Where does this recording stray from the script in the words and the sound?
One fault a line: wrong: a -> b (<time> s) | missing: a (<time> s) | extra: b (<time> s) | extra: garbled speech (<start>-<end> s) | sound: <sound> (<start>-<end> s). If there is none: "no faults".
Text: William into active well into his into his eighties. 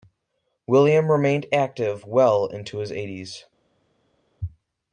wrong: into -> remained (1.1 s)
missing: into his (2.9 s)